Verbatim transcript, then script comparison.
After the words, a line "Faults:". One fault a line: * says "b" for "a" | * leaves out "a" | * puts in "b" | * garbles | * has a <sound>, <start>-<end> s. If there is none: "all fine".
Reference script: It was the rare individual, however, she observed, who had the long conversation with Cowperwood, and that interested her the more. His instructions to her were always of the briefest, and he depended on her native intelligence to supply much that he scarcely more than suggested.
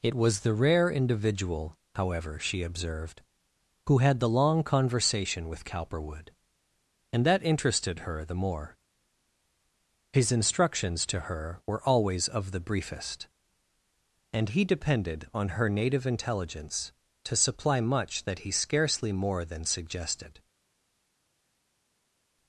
It was the rare individual, however, she observed, who had the long conversation with Cowperwood, and that interested her the more. His instructions to her were always of the briefest, and he depended on her native intelligence to supply much that he scarcely more than suggested.
Faults:
all fine